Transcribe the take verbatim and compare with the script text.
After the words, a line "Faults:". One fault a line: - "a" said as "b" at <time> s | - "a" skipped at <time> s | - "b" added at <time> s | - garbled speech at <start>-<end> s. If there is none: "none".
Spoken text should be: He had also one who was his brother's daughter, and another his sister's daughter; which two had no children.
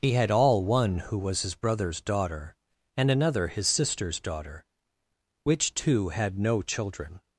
He had all one who was his brother's daughter, and another his sister's daughter; which two had no children.
Faults:
- "also" said as "all" at 0.3 s